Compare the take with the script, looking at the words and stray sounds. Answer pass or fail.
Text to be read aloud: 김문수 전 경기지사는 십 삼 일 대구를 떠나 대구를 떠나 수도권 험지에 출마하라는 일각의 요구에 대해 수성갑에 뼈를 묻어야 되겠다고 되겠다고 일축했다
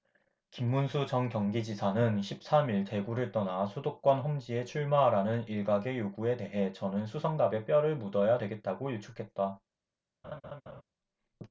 fail